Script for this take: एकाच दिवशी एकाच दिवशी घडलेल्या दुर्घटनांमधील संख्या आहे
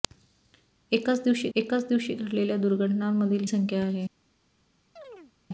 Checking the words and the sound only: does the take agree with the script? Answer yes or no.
no